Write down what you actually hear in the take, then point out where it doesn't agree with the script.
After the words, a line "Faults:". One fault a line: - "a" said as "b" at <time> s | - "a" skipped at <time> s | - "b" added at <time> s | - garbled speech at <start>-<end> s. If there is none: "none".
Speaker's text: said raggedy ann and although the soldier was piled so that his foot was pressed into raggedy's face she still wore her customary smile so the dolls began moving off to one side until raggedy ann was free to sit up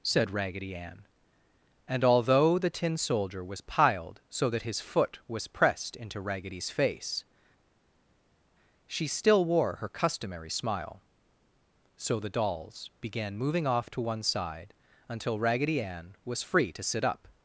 said raggedy ann and although the tin soldier was piled so that his foot was pressed into raggedy's face she still wore her customary smile so the dolls began moving off to one side until raggedy ann was free to sit up
Faults:
- "tin" added at 2.7 s